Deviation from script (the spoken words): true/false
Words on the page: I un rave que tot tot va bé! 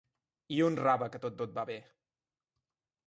false